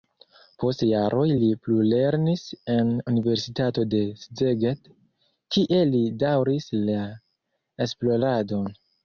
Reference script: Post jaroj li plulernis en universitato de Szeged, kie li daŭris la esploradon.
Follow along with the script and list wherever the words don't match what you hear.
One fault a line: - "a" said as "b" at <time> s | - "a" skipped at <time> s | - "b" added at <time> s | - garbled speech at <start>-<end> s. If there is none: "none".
none